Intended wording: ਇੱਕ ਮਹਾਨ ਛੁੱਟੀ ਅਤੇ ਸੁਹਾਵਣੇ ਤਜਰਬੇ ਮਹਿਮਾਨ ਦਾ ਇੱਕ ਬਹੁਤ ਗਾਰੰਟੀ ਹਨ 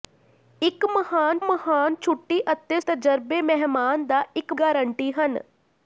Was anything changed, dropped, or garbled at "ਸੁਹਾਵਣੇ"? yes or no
yes